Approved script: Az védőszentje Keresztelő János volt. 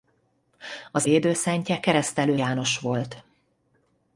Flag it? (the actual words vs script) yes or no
no